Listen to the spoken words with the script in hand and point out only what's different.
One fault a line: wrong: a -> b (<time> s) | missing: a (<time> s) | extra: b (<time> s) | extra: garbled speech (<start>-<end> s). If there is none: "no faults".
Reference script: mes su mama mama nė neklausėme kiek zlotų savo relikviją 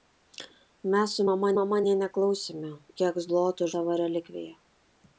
no faults